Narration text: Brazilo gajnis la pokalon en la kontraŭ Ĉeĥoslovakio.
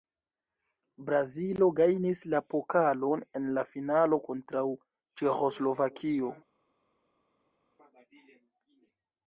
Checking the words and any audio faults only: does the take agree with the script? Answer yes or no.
no